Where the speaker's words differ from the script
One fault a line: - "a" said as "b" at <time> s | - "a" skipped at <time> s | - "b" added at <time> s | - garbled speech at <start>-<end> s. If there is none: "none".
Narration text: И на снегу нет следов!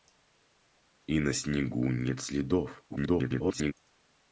- garbled speech at 2.9-3.7 s